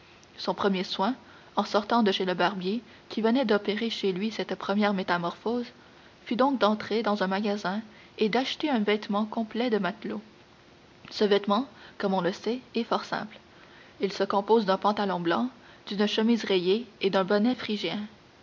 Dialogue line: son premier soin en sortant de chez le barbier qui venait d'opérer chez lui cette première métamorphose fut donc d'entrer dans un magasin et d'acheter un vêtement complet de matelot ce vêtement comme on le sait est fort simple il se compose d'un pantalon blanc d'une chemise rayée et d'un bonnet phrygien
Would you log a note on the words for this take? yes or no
no